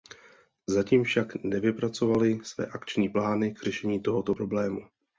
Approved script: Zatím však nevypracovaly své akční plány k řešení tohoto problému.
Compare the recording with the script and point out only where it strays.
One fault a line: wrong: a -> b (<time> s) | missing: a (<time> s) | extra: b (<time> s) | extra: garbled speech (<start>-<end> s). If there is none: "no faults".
no faults